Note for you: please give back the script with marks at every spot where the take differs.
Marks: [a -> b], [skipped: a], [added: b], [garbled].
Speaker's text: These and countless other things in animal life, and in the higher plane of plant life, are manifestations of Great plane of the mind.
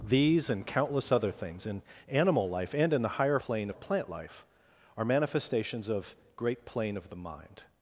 These and countless other things in animal life, and in the higher plane of plant life, are manifestations of Great plane of the mind.